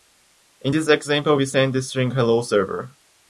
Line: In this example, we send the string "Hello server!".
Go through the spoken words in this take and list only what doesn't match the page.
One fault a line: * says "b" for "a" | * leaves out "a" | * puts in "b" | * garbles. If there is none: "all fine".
all fine